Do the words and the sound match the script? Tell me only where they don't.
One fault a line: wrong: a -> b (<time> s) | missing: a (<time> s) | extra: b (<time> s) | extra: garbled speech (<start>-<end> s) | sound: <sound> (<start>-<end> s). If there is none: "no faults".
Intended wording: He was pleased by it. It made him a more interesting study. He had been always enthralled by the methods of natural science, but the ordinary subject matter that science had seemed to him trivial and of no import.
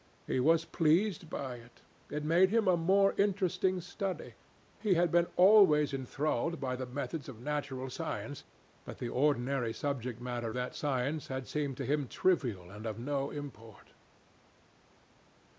no faults